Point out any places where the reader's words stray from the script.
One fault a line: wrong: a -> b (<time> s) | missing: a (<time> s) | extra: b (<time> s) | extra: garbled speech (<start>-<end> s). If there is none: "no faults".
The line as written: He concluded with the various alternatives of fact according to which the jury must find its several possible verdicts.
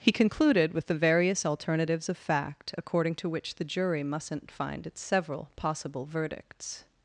wrong: must -> mustn't (4.0 s)